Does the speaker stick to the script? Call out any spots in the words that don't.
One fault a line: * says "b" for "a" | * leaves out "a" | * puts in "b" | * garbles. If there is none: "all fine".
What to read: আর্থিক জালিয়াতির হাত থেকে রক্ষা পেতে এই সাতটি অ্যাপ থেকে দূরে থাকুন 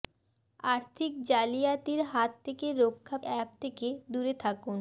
* leaves out "পেতে এই সাতটি"